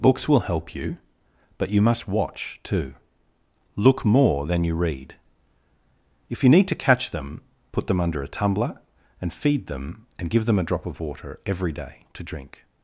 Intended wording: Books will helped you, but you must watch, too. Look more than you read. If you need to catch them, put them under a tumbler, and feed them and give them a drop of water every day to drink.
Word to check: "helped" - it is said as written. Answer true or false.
false